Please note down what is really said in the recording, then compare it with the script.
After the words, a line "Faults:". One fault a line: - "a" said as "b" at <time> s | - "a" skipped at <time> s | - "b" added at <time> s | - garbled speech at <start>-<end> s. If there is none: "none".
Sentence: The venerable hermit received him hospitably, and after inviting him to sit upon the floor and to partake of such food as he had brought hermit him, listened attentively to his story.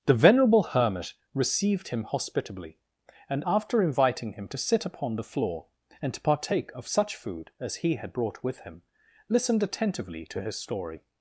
The venerable hermit received him hospitably, and after inviting him to sit upon the floor and to partake of such food as he had brought with him, listened attentively to his story.
Faults:
- "hermit" said as "with" at 8.4 s